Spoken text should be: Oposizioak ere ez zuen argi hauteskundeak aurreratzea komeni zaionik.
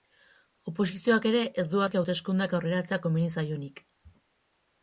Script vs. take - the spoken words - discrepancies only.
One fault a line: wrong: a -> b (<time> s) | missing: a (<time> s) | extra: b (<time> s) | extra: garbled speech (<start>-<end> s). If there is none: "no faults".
wrong: zuen -> du (1.7 s)